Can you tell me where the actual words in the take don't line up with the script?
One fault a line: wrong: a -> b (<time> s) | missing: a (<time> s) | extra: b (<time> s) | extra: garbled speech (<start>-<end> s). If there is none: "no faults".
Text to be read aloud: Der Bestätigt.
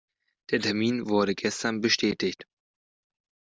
extra: Termin wurde gestern (0.6 s)